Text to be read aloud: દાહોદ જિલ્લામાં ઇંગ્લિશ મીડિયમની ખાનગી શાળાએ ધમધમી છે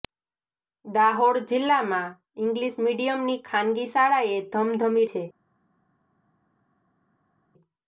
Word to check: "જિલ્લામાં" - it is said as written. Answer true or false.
true